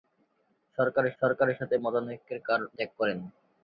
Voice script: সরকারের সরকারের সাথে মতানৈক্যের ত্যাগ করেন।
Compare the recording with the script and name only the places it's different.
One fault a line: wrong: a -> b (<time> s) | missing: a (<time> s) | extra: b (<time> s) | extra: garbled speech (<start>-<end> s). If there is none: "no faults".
no faults